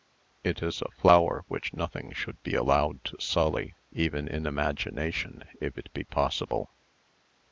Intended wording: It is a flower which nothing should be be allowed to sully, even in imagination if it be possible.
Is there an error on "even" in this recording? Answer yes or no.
no